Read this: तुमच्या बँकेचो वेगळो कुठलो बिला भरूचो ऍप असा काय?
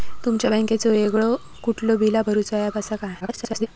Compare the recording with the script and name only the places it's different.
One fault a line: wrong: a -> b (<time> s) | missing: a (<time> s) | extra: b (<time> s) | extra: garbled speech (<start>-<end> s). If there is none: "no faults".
extra: garbled speech (3.2-3.7 s)